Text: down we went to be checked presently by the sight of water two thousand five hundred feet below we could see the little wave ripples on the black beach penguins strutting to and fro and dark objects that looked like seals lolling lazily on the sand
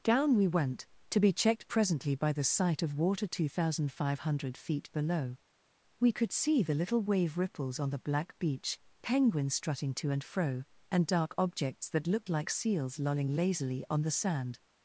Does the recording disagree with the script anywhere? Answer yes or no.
no